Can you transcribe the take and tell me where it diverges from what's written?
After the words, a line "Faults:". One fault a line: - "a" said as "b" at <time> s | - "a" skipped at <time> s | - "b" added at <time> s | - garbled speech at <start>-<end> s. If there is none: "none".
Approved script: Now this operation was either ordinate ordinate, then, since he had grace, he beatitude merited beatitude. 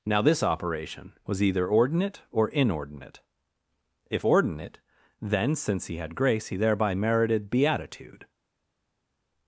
Now this operation was either ordinate or inordinate. If ordinate, then, since he had grace, he thereby merited beatitude.
Faults:
- "or inordinate If" added at 2.3 s
- "beatitude" said as "thereby" at 6.6 s